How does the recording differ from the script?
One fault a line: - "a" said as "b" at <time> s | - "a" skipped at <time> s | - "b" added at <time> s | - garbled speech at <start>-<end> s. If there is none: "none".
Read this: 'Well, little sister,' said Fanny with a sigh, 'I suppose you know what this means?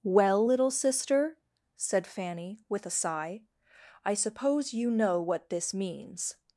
none